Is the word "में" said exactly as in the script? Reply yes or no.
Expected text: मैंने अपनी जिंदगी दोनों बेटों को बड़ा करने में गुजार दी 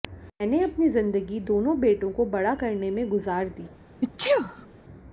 yes